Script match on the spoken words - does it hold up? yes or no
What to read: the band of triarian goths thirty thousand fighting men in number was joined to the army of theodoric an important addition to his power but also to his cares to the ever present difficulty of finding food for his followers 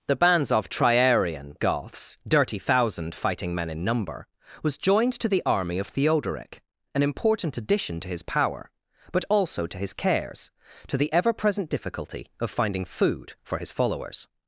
no